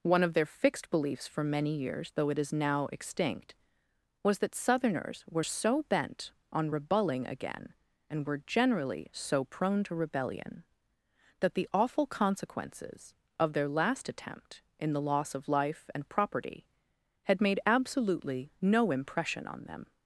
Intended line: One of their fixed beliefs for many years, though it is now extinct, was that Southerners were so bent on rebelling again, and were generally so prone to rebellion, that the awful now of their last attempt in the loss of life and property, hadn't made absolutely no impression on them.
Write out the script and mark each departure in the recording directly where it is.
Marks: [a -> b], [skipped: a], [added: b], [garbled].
One of their fixed beliefs for many years, though it is now extinct, was that Southerners were so bent on rebelling again, and were generally so prone to rebellion, that the awful [now -> consequences] of their last attempt in the loss of life and property, [hadn't -> had] made absolutely no impression on them.